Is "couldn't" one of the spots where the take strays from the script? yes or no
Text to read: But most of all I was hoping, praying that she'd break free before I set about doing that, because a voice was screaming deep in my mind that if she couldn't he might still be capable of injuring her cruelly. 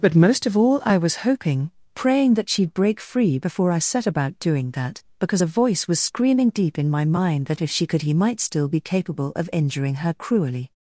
yes